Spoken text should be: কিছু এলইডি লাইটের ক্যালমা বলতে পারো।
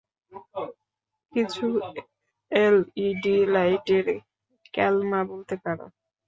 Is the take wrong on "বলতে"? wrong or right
right